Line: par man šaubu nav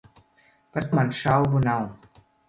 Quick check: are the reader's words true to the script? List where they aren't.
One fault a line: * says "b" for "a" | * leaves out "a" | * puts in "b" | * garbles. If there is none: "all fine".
all fine